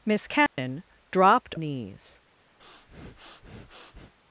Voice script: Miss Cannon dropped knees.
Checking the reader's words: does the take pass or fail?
pass